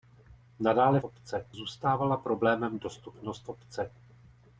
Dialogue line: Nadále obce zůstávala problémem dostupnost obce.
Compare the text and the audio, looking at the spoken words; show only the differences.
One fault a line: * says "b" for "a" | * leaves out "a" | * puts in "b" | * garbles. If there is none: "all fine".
all fine